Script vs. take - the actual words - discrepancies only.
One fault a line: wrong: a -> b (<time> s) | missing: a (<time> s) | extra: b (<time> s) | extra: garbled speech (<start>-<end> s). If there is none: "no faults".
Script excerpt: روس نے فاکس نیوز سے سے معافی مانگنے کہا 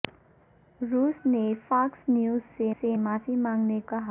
no faults